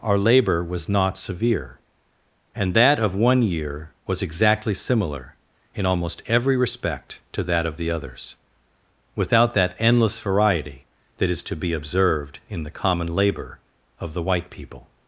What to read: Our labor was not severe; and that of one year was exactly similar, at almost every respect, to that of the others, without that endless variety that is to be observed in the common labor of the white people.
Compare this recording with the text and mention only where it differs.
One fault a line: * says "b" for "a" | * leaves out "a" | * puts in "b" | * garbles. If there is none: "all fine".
* says "in" for "at"